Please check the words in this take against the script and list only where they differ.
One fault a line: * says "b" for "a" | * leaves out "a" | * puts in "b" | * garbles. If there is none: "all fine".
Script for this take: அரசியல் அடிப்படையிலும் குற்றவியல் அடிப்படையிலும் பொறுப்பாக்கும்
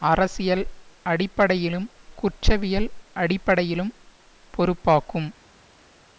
all fine